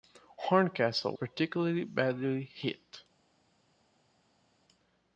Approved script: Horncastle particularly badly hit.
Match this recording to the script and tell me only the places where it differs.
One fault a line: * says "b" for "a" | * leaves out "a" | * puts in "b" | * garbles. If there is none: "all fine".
all fine